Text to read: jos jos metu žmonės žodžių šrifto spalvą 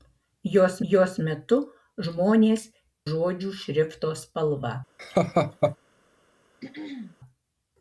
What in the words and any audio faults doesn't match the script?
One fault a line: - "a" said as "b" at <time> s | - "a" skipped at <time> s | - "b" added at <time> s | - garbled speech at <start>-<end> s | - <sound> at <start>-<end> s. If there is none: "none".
- laugh at 5.0-5.8 s
- throat clearing at 6.6-7.2 s